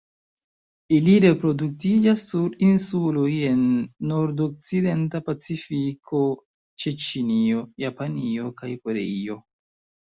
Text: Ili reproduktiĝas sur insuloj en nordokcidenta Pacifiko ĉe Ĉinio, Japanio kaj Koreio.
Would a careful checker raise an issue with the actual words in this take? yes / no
no